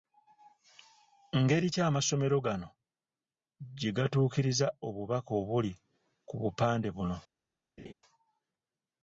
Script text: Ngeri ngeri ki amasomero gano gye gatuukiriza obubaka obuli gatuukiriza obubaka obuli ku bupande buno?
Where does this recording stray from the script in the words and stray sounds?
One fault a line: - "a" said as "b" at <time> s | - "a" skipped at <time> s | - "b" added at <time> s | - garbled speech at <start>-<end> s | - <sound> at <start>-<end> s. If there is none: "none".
- "ngeri" skipped at 1.7 s
- "gatuukiriza obubaka obuli" skipped at 5.7 s
- laugh at 7.8-7.9 s